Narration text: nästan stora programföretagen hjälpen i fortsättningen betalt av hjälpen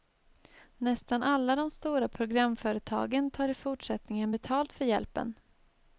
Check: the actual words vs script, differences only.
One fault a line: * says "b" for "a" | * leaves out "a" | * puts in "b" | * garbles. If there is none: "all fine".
* puts in "alla de"
* says "tar" for "hjälpen"
* says "för" for "av"